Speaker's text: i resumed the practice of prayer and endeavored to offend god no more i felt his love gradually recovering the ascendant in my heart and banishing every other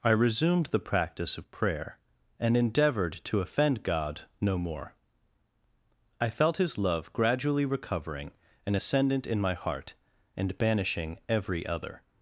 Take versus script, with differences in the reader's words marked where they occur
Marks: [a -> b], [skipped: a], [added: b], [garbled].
i resumed the practice of prayer and endeavored to offend god no more i felt his love gradually recovering [the -> an] ascendant in my heart and banishing every other